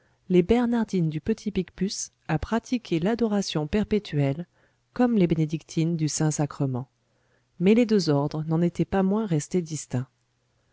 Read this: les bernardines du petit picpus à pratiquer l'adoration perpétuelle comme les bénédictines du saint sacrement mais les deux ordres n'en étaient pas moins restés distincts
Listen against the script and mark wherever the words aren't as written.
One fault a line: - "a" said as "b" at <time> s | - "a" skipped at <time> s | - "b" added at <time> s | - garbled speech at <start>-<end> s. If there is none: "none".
none